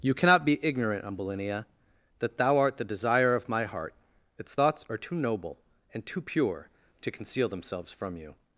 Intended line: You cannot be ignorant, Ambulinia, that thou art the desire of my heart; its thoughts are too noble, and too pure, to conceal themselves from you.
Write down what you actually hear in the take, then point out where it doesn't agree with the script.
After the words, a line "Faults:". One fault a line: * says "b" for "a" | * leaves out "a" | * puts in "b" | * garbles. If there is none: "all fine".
You cannot be ignorant, Ambulinia, that thou art the desire of my heart; its thoughts are too noble, and too pure, to conceal themselves from you.
Faults:
all fine